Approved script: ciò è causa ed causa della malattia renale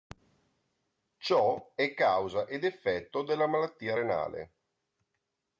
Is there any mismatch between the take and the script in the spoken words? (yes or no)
yes